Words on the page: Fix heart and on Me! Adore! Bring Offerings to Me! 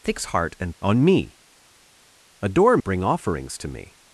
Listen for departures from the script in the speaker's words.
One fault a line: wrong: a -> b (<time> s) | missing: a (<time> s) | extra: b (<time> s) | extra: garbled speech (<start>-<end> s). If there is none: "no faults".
no faults